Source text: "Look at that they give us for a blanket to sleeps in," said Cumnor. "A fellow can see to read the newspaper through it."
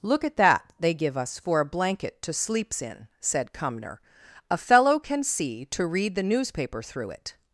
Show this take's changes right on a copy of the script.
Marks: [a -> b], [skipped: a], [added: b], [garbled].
"Look at that they give us for a blanket to sleeps in," said Cumnor. "A fellow can see to read the newspaper through it."